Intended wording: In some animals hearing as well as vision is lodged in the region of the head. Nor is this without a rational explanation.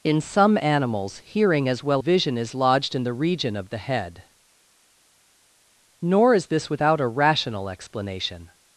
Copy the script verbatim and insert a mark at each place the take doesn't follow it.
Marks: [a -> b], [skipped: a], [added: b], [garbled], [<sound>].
In some animals hearing as well [skipped: as] vision is lodged in the region of the head. Nor is this without a rational explanation.